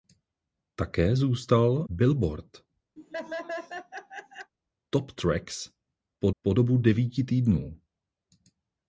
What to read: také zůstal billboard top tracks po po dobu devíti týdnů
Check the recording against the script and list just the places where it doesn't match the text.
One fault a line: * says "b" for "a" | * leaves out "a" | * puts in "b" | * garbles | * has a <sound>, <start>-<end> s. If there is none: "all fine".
* has a laugh, 3.0-4.5 s